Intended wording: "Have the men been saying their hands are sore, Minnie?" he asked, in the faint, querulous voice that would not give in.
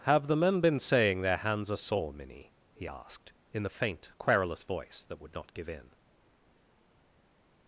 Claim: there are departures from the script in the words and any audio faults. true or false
false